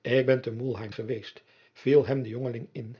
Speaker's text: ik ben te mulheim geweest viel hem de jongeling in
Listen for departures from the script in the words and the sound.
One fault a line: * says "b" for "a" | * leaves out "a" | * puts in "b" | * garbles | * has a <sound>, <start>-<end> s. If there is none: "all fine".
all fine